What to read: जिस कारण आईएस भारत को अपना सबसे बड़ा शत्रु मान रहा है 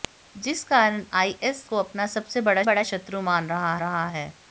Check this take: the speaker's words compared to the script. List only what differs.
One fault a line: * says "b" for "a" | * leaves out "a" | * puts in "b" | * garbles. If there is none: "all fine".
* leaves out "भारत"
* puts in "बड़ा"
* puts in "रहा"